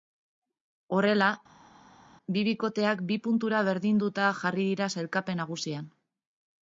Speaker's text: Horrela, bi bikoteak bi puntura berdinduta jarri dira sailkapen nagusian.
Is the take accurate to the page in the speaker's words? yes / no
yes